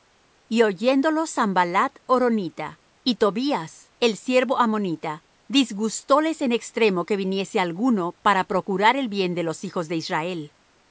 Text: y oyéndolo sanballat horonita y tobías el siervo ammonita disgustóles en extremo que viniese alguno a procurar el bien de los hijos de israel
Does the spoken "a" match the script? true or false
false